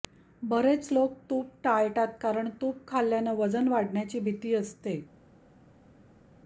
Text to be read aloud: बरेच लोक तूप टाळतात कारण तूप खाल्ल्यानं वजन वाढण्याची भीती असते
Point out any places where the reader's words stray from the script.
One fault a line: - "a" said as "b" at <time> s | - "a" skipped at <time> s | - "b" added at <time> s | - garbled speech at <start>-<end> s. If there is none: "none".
none